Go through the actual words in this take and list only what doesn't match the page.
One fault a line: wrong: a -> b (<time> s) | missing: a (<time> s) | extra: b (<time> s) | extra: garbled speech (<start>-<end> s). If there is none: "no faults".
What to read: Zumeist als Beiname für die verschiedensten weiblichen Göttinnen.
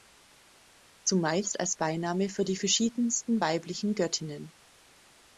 no faults